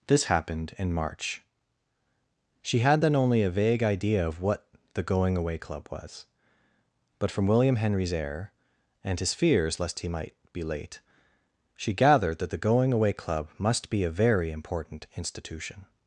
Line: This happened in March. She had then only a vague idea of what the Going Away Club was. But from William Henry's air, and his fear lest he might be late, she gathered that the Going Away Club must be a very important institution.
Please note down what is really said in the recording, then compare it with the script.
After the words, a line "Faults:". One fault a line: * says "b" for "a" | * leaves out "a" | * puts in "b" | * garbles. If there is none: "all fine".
This happened in March. She had then only a vague idea of what the Going Away Club was. But from William Henry's air, and his fears lest he might be late, she gathered that the Going Away Club must be a very important institution.
Faults:
* says "fears" for "fear"